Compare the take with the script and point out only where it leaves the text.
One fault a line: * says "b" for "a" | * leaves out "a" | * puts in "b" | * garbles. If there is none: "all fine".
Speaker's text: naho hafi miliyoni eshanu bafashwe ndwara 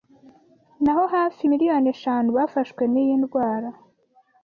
* puts in "n'iyi"